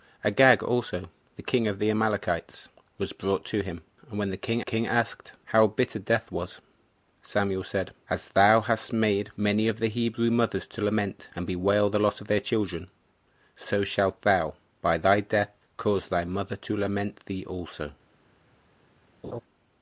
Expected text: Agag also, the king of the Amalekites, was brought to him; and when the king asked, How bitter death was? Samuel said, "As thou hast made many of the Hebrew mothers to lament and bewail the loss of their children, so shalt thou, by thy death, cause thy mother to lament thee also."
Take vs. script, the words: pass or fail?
fail